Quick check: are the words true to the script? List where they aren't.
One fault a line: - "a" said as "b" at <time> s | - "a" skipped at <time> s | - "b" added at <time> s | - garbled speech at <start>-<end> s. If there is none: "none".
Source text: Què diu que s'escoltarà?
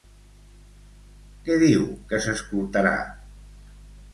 none